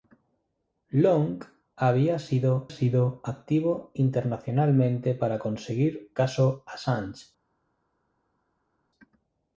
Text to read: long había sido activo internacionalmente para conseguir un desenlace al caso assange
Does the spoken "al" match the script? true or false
false